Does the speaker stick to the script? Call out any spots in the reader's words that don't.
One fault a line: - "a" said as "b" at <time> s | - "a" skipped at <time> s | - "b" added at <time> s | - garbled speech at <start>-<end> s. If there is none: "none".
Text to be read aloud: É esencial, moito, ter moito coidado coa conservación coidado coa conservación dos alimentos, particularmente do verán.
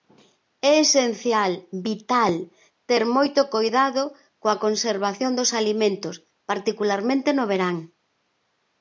- "moito" said as "vital" at 1.9 s
- "coidado coa conservación" skipped at 5.3 s
- "do" said as "no" at 7.3 s